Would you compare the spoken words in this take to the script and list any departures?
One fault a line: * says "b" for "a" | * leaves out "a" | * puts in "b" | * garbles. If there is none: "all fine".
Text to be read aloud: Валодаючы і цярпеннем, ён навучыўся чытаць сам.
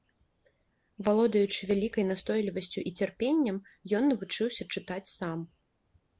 * puts in "вялікай настойлівасцю"